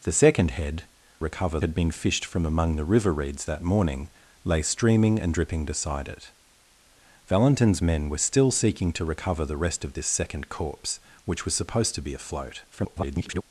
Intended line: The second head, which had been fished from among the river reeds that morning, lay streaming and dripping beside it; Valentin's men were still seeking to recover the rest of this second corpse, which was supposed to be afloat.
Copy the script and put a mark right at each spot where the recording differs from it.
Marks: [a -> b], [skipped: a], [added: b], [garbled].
The second head, [which -> recover] had been fished from among the river reeds that morning, lay streaming and dripping beside it; Valentin's men were still seeking to recover the rest of this second corpse, which was supposed to be afloat. [garbled]